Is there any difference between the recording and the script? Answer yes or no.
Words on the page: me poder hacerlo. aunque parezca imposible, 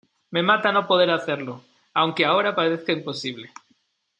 yes